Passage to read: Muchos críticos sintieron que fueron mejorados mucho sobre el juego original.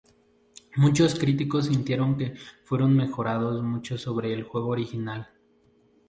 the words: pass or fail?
pass